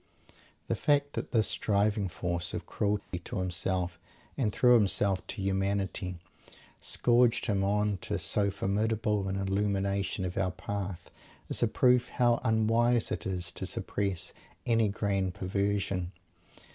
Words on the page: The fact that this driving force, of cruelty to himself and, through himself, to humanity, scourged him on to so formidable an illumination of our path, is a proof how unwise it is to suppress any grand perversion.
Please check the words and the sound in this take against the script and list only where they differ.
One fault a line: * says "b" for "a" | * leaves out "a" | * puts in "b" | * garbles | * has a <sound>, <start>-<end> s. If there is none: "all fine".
* has a dropout, 3.0-3.1 s